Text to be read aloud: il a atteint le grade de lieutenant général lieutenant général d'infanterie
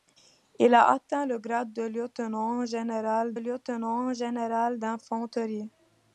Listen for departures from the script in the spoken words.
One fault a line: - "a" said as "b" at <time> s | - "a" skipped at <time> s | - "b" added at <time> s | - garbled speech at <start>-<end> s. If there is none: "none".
none